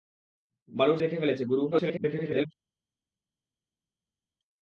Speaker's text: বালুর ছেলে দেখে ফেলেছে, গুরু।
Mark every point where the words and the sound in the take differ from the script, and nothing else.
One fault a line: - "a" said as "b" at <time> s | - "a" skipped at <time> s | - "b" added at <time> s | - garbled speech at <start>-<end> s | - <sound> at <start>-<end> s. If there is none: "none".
- "ছেলে" skipped at 1.0 s
- garbled speech at 1.7-2.5 s